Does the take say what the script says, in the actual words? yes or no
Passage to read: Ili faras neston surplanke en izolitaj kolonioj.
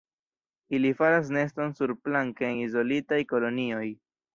no